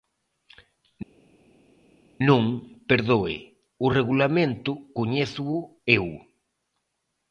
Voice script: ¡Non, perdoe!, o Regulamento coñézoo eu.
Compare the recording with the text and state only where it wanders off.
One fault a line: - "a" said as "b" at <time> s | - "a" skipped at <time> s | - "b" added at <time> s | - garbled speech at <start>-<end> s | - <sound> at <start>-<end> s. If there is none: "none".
none